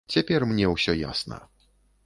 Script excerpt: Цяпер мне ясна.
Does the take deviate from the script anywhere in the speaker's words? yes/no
yes